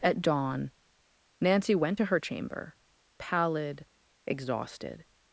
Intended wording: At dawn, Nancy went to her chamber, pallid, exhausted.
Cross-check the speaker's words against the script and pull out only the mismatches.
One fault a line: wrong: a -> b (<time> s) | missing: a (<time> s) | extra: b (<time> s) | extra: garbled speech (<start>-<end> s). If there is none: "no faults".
no faults